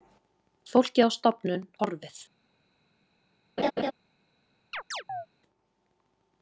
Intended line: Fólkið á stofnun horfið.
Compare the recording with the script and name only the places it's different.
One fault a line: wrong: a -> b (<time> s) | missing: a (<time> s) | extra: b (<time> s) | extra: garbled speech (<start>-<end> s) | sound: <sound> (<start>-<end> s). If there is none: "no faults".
sound: laugh (3.6-3.9 s)
sound: chirp (4.7-5.3 s)